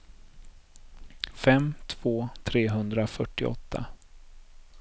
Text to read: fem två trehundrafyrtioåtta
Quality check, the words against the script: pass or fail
pass